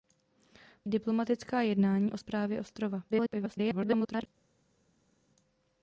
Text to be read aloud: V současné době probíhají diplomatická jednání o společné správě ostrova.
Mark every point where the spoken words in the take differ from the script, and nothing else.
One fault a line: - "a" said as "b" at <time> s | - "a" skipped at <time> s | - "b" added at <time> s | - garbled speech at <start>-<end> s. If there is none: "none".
- "současné době probíhají" skipped at 0.9 s
- "společné" skipped at 2.2 s
- garbled speech at 3.1-4.3 s